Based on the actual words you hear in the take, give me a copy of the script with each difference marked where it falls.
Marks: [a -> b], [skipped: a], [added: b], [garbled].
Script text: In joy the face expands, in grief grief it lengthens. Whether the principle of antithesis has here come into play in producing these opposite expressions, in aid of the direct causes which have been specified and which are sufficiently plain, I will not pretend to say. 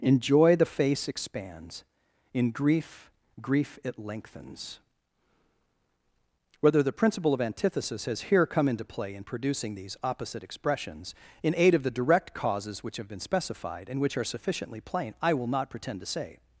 In joy the face expands, in grief grief it lengthens. Whether the principle of antithesis has here come into play in producing these opposite expressions, in aid of the direct causes which have been specified and which are sufficiently plain, I will not pretend to say.